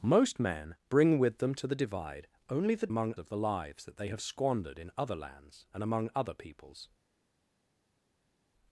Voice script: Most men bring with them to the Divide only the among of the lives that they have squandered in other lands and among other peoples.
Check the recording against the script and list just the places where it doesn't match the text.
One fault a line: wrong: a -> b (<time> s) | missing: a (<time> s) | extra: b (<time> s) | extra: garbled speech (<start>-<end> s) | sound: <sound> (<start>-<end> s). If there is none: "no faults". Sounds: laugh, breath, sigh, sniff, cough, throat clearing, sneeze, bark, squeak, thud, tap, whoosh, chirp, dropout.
no faults